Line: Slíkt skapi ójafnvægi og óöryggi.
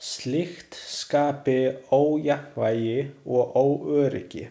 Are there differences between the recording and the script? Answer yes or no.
no